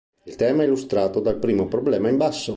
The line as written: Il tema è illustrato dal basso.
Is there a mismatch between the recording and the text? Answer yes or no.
yes